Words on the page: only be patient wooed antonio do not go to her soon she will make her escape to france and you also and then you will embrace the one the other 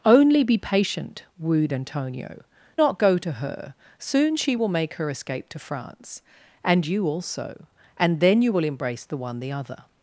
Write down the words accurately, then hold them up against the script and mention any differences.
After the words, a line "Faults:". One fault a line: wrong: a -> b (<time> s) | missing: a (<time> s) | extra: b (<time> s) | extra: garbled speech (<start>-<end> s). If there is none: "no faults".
only be patient wooed antonio not go to her soon she will make her escape to france and you also and then you will embrace the one the other
Faults:
missing: do (2.4 s)